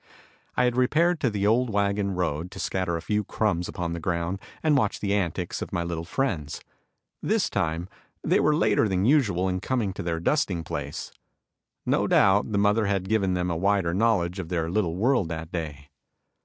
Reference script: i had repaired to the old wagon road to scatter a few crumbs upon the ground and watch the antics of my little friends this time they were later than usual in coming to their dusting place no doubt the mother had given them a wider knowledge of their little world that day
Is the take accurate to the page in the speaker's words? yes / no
yes